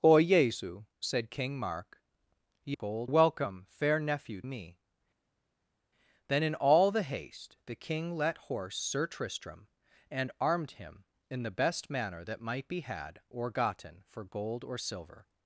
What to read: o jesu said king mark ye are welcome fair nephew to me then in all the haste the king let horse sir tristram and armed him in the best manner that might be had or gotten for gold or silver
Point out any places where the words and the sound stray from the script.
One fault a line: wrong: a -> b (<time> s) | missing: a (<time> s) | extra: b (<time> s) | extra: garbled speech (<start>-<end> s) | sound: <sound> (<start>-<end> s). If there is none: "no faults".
wrong: are -> gold (2.7 s)
missing: to (4.4 s)